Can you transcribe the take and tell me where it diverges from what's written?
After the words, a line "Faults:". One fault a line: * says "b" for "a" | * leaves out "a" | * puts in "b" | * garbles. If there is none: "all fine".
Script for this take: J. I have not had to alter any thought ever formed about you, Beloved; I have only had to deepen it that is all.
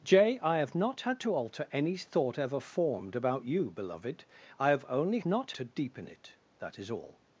J. I have not had to alter any thought ever formed about you, Beloved; I have only not to deepen it that is all.
Faults:
* says "not" for "had"